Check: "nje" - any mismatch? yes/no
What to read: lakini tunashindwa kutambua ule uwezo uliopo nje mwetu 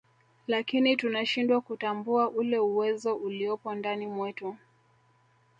yes